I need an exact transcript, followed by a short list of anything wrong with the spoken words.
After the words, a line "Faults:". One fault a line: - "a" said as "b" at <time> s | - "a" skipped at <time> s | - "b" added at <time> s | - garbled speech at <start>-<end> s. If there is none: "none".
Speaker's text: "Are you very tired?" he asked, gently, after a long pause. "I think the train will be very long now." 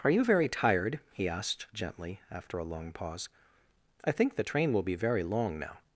"Are you very tired?" he asked, gently, after a long pause. "I think the train will be very long now."
Faults:
none